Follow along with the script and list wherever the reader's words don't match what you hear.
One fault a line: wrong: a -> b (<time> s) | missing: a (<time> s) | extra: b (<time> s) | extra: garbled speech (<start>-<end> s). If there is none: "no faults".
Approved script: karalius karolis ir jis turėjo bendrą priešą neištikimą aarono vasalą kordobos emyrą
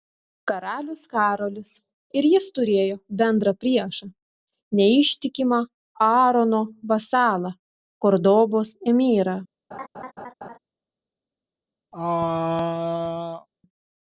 no faults